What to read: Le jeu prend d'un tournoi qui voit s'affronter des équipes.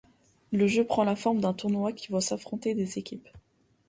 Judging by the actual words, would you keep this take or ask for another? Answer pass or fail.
fail